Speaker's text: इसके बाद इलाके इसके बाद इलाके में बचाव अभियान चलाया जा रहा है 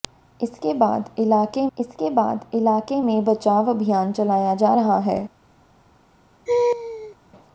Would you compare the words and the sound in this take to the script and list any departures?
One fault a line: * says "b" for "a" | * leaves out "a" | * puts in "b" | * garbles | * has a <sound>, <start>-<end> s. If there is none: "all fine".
* has a laugh, 6.5-7.2 s